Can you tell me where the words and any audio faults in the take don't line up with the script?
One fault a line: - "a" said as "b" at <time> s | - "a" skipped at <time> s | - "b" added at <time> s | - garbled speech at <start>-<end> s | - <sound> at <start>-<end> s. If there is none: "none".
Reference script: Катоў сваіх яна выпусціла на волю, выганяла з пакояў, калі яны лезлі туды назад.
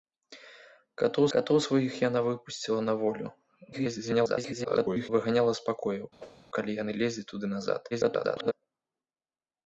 - "катоў" added at 1.3 s
- garbled speech at 3.7-5.1 s
- whoosh at 6.2-6.5 s
- garbled speech at 7.9-8.5 s